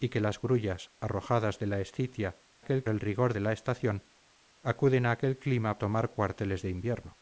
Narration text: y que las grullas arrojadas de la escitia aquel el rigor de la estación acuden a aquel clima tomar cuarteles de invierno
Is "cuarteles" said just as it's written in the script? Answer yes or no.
yes